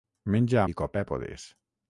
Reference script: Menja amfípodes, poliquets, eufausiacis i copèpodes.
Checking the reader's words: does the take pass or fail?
fail